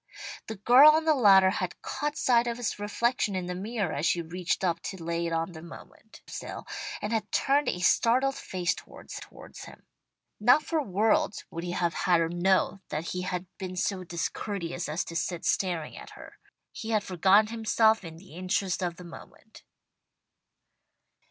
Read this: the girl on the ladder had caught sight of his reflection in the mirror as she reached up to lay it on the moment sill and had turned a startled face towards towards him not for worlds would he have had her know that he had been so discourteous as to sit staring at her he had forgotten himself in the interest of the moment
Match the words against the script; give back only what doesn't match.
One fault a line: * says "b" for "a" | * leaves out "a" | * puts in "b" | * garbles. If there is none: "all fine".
all fine